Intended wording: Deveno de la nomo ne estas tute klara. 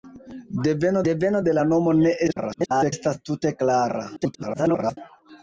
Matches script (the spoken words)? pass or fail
fail